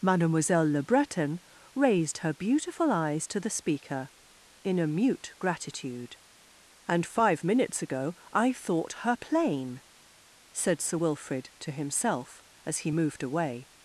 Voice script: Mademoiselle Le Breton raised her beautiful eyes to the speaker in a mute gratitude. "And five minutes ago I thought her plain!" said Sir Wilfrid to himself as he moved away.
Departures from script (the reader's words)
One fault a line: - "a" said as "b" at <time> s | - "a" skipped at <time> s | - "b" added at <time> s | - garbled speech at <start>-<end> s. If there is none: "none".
none